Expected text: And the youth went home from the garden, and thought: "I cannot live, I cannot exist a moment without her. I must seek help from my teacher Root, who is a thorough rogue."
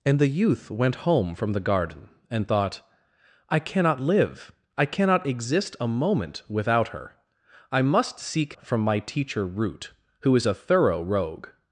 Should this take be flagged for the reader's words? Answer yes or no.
yes